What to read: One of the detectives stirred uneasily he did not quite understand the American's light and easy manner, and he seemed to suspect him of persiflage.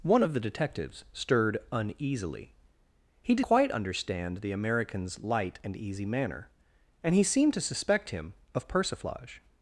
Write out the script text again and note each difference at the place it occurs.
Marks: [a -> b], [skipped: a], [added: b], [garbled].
One of the detectives stirred uneasily he did [skipped: not] quite understand the American's light and easy manner, and he seemed to suspect him of persiflage.